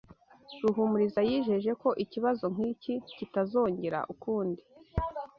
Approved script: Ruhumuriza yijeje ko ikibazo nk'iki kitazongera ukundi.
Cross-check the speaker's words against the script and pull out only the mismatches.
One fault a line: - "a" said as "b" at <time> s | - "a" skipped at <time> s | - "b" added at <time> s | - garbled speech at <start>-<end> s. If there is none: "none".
none